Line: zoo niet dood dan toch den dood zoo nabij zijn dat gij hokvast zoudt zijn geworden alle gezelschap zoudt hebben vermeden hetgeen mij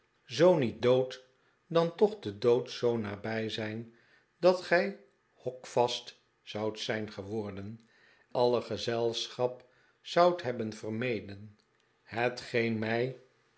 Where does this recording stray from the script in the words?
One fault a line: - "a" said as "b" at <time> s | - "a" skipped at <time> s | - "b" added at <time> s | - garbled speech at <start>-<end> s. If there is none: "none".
none